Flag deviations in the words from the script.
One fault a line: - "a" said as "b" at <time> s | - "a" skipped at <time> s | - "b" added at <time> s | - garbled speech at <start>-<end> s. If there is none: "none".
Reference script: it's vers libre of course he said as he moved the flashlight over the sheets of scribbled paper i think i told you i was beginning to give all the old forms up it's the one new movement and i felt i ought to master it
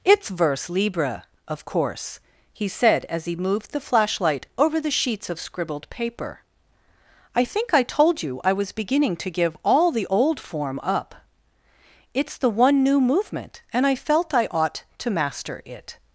- "forms" said as "form" at 10.4 s